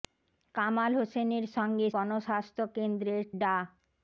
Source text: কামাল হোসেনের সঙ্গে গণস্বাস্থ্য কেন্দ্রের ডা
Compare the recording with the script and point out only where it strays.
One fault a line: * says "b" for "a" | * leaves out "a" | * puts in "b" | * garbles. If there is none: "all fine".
all fine